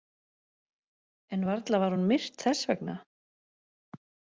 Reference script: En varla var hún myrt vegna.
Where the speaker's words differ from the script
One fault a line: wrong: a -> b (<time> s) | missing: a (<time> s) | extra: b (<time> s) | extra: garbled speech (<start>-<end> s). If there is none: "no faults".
extra: þess (2.5 s)